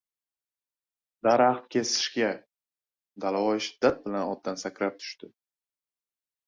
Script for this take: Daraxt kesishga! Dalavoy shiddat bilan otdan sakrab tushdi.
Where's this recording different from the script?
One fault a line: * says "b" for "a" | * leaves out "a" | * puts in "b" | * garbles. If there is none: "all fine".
all fine